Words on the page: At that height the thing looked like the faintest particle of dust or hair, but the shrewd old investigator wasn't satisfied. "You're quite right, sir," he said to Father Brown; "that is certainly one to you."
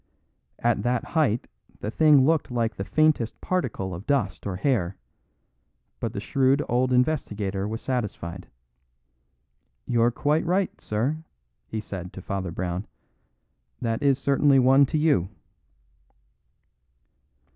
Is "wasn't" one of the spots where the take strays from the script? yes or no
yes